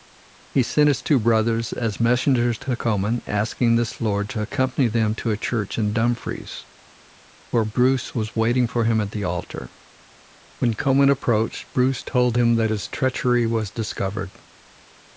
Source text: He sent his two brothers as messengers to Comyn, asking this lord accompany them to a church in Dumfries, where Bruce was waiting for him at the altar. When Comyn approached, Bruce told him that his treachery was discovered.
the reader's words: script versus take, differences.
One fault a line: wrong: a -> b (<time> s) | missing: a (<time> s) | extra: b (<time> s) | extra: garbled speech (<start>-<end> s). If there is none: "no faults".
extra: to (4.3 s)